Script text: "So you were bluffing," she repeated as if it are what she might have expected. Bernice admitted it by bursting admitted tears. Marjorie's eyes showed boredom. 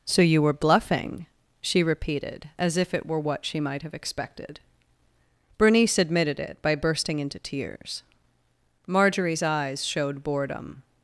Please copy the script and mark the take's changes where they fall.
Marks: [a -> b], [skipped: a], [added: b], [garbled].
"So you were bluffing," she repeated as if it [are -> were] what she might have expected. Bernice admitted it by bursting [admitted -> into] tears. Marjorie's eyes showed boredom.